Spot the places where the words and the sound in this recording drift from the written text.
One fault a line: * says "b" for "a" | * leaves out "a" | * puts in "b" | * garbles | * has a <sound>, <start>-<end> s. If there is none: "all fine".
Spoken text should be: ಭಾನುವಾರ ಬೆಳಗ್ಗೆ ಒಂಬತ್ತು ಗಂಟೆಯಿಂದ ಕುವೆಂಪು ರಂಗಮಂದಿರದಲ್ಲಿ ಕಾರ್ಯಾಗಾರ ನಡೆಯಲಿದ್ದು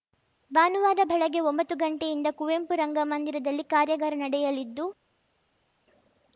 all fine